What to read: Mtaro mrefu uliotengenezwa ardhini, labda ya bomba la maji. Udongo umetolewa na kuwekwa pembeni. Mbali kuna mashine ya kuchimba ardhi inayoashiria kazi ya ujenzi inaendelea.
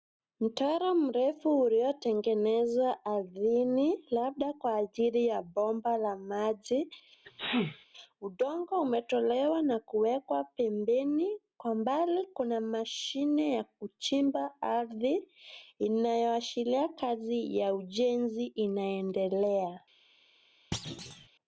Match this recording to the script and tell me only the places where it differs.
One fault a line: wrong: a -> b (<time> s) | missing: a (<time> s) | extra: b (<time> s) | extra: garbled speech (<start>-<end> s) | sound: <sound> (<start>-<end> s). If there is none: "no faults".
extra: kwa ajili (4.5 s)
sound: sneeze (7.2-7.9 s)
extra: Kwa (11.6 s)
sound: thud (20.7-21.3 s)